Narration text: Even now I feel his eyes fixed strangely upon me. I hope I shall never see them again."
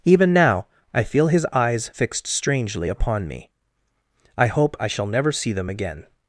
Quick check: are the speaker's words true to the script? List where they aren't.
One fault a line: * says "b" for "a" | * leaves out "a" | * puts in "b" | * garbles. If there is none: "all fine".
all fine